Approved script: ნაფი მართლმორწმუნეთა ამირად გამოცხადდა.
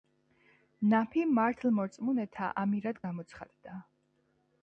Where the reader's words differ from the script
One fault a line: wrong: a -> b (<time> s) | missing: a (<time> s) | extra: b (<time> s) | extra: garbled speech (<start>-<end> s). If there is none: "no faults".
no faults